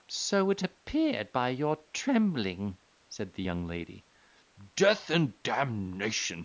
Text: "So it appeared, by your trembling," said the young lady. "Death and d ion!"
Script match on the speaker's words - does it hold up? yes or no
yes